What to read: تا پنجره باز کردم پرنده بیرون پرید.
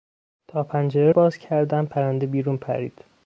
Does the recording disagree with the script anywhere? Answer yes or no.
no